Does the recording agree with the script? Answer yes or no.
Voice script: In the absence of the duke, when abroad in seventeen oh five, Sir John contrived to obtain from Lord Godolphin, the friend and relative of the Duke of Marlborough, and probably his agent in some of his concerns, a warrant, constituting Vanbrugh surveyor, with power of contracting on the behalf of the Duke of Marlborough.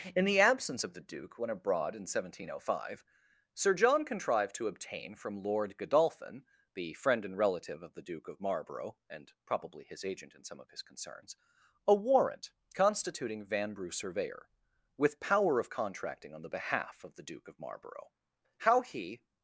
no